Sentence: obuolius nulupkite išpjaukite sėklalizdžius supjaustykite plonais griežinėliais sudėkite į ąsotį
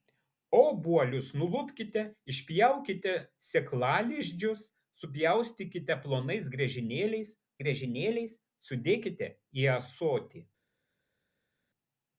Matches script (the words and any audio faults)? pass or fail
fail